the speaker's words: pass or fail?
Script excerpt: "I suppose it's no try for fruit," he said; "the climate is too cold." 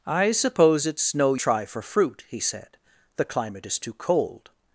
pass